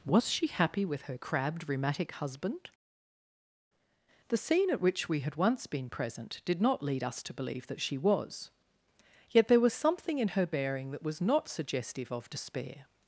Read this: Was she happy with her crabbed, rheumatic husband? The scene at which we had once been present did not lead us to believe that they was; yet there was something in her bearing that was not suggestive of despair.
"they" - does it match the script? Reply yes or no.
no